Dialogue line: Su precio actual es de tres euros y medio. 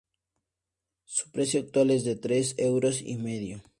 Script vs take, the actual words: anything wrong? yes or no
no